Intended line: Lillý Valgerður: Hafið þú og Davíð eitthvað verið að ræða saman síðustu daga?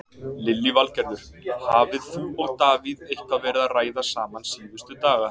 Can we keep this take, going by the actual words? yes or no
yes